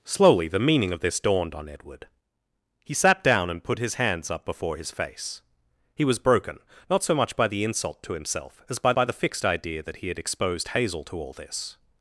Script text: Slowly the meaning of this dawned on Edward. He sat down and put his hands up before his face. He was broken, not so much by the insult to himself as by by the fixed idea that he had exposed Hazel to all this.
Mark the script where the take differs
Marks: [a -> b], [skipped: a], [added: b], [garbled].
Slowly the meaning of this dawned on Edward. He sat down and put his hands up before his face. He was broken, not so much by the insult to himself as by by the fixed idea that he had exposed Hazel to all this.